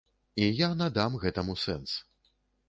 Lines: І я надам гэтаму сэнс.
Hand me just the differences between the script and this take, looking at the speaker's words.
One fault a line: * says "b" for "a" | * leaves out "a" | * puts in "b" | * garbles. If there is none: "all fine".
all fine